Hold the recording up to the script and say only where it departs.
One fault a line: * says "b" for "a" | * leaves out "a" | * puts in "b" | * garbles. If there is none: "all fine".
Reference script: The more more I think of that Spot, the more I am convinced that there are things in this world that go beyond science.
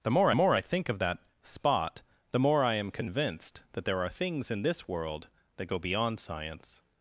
all fine